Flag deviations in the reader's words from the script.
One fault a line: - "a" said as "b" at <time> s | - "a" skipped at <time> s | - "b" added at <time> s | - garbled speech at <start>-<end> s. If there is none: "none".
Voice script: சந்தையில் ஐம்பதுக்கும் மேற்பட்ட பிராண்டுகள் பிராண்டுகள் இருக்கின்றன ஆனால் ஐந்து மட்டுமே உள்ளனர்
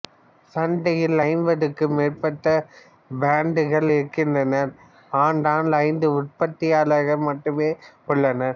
- "பிராண்டுகள்" skipped at 3.9 s
- "உற்பத்தியாளர்கள்" added at 6.2 s